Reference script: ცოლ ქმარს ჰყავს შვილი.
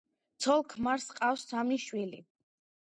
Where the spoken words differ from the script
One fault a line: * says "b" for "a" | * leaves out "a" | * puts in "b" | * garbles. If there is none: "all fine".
* puts in "სამი"